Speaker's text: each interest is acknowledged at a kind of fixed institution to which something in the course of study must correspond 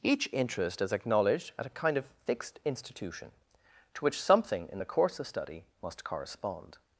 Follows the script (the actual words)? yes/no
yes